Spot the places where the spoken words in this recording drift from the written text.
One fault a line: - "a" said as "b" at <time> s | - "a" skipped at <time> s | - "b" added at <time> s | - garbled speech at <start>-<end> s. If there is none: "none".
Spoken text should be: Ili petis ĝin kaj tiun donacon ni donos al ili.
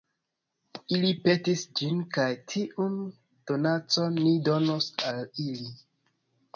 none